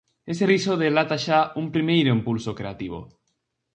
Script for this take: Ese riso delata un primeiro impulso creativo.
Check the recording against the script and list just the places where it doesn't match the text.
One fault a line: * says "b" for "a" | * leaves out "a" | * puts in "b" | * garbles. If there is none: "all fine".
* puts in "xa"